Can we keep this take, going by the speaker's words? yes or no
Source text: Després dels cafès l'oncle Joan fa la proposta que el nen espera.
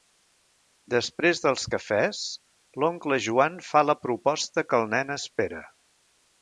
yes